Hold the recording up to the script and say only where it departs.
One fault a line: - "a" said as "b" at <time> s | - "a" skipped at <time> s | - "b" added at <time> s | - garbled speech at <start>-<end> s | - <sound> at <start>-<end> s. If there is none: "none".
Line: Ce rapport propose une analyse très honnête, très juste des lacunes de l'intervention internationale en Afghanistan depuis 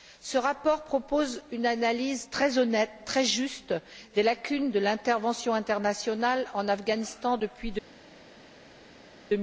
none